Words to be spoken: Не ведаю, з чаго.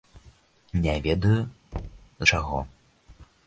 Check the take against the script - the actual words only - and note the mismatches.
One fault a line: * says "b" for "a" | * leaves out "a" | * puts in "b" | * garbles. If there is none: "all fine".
all fine